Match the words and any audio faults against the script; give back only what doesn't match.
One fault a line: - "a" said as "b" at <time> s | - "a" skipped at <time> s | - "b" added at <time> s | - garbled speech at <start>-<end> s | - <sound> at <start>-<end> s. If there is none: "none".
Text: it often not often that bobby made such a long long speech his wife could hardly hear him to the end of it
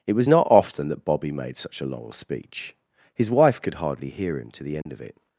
- "often" said as "was" at 0.1 s
- "long" skipped at 2.1 s
- dropout at 4.8-4.9 s